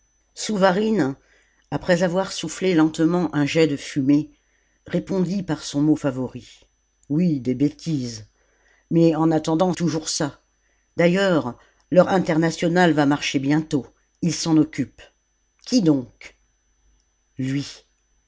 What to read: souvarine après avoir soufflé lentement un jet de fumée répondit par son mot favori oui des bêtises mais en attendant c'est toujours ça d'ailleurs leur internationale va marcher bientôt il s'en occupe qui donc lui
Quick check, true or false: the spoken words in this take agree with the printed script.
false